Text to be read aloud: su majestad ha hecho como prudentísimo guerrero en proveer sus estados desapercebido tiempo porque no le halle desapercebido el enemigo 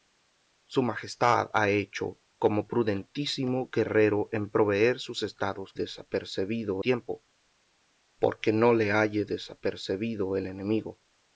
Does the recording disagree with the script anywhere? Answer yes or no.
no